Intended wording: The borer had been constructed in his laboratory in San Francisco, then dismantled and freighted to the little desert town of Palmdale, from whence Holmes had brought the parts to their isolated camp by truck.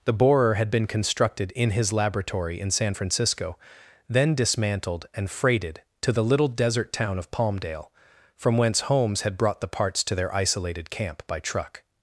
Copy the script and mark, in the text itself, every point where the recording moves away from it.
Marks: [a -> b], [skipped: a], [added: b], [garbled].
The borer had been constructed in his laboratory in San Francisco, then dismantled and freighted to the little desert town of Palmdale, from whence Holmes had brought the parts to their isolated camp by truck.